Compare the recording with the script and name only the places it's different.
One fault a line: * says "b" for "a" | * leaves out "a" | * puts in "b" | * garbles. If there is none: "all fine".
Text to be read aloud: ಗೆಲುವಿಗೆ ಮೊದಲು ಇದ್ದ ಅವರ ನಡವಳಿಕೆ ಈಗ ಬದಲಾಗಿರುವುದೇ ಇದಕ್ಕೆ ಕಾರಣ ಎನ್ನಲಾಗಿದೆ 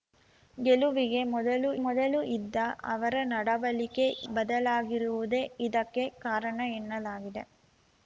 * puts in "ಮೊದಲು"
* leaves out "ಈಗ"